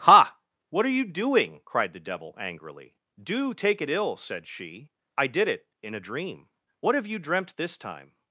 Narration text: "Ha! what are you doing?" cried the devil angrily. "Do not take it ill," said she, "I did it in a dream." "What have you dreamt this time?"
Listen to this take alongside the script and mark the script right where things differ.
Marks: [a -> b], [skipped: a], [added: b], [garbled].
"Ha! what are you doing?" cried the devil angrily. "Do [skipped: not] take it ill," said she, "I did it in a dream." "What have you dreamt this time?"